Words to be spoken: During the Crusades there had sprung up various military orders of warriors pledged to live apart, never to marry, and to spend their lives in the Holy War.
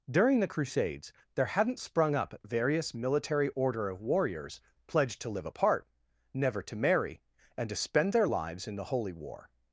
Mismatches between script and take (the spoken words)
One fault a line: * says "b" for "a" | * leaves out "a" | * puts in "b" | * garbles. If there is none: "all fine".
* says "hadn't" for "had"
* says "order" for "orders"